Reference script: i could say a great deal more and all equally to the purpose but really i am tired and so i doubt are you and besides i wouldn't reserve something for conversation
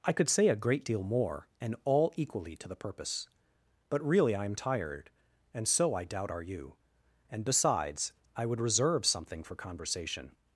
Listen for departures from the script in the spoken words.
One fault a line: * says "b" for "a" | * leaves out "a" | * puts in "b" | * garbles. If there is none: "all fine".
* says "would" for "wouldn't"